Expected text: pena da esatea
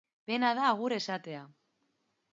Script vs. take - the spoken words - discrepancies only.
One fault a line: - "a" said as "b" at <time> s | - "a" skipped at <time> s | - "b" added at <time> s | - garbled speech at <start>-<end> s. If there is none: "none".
- "agur" added at 0.7 s